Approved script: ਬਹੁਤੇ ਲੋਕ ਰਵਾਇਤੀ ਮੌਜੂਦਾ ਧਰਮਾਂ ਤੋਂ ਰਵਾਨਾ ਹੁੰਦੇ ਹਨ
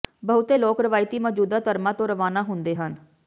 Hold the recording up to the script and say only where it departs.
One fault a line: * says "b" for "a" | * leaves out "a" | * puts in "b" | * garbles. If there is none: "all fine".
all fine